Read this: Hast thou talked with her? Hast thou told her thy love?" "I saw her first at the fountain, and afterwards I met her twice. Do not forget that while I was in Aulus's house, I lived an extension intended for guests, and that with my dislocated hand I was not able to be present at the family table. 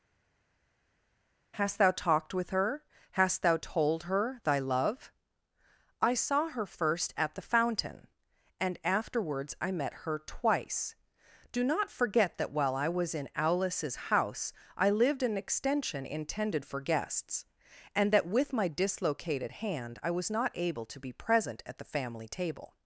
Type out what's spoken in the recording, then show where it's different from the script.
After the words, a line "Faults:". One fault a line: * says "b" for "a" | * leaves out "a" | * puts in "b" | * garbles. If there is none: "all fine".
Hast thou talked with her? Hast thou told her thy love?" "I saw her first at the fountain, and afterwards I met her twice. Do not forget that while I was in Aulus's house, I lived an extension intended for guests, and that with my dislocated hand I was not able to be present at the family table.
Faults:
all fine